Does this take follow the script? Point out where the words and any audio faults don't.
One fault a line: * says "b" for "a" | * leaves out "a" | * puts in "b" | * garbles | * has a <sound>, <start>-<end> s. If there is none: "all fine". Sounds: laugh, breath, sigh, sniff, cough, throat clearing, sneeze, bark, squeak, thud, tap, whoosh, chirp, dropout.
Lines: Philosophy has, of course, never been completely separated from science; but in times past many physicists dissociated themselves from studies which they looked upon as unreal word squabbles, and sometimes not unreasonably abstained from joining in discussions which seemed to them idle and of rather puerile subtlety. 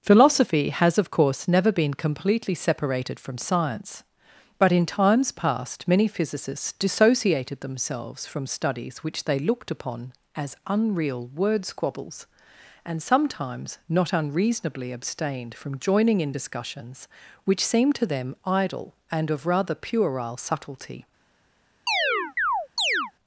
* has a chirp, 21.9-23.1 s